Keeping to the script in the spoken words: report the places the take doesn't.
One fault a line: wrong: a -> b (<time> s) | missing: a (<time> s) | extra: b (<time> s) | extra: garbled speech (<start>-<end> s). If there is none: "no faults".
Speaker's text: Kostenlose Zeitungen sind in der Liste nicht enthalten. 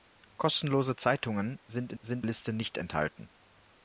wrong: der -> sind (2.0 s)